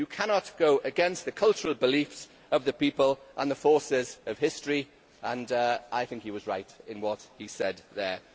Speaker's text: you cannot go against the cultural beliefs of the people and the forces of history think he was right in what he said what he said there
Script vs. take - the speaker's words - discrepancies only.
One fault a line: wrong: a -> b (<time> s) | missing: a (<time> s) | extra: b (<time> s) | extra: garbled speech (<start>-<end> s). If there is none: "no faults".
extra: and i (5.2 s)
missing: what he said (7.8 s)